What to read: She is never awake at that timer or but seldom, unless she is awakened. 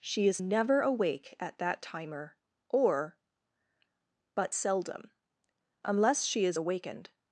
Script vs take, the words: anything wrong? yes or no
no